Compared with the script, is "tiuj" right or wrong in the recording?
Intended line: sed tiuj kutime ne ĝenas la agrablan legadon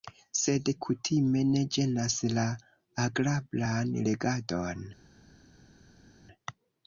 wrong